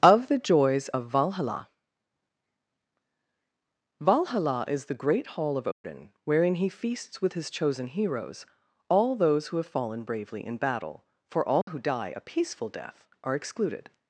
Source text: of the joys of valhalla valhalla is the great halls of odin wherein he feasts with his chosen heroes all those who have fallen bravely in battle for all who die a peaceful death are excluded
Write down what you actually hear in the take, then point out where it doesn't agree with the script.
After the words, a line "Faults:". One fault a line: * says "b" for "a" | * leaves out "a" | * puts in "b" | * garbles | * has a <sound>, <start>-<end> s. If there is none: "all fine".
of the joys of valhalla valhalla is the great hall of odin wherein he feasts with his chosen heroes all those who have fallen bravely in battle for all who die a peaceful death are excluded
Faults:
* says "hall" for "halls"
* has a dropout, 5.7-5.8 s
* has a dropout, 11.6-11.7 s